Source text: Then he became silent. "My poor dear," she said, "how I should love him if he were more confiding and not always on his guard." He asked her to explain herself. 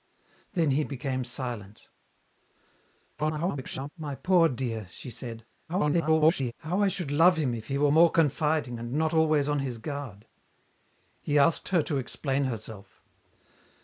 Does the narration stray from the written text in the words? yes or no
yes